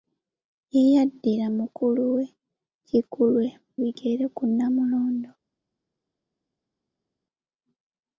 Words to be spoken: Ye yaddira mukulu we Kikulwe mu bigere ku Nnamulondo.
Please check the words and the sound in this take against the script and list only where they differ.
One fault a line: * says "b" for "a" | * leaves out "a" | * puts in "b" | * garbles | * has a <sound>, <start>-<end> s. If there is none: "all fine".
* leaves out "mu"